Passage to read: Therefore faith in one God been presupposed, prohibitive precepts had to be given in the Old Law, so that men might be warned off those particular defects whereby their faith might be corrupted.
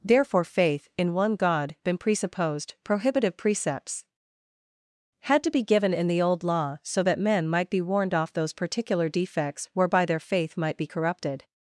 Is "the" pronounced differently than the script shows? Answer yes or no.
no